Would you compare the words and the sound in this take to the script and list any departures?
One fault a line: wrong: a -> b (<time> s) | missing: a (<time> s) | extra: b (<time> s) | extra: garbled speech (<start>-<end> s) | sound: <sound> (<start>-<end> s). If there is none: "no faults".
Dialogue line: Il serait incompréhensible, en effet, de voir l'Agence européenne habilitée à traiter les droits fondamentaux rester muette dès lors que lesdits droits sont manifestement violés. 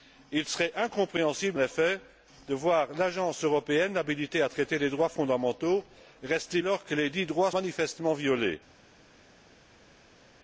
missing: en (1.6 s)
missing: muette dès (6.6 s)
missing: sont (7.5 s)